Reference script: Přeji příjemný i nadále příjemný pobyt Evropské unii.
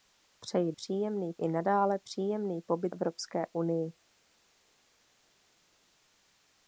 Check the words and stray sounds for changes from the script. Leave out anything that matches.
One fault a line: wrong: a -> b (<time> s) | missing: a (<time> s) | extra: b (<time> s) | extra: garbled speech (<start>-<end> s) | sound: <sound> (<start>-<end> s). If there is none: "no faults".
no faults